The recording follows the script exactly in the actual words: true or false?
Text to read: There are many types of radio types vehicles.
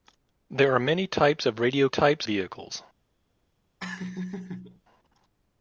true